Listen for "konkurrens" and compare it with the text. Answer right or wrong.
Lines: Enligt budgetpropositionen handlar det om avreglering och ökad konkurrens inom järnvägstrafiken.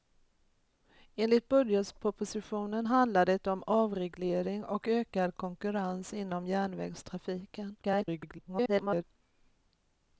right